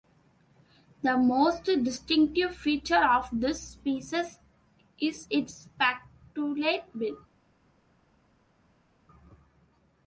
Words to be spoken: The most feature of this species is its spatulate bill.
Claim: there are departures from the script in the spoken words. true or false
true